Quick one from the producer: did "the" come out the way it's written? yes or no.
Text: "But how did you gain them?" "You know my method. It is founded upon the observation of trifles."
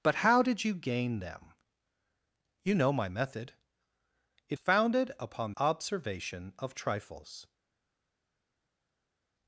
no